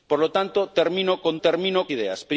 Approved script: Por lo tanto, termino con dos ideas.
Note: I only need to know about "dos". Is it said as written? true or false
false